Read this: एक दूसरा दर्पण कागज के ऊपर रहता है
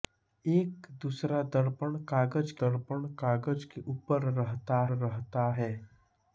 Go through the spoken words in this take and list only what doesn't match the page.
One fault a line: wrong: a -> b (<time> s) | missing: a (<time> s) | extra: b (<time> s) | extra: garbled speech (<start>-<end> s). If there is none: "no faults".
extra: दर्पण कागज (2.6 s)
extra: रहता (5.0 s)